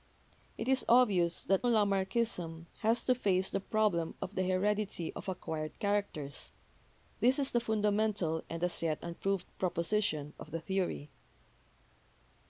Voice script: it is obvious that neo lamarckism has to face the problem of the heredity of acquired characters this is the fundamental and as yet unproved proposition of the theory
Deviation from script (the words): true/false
true